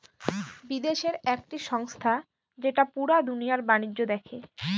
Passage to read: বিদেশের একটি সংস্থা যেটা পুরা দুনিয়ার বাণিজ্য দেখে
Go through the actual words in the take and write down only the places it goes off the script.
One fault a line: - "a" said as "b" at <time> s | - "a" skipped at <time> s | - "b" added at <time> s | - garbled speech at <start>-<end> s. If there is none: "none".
none